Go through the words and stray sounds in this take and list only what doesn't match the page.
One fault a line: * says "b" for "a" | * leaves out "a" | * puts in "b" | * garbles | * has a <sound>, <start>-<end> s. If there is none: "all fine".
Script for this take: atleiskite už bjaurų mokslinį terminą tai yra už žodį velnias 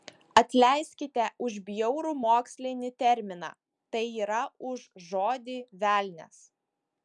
all fine